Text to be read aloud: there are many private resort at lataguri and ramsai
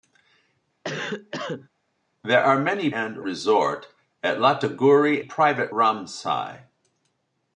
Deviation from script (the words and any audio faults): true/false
true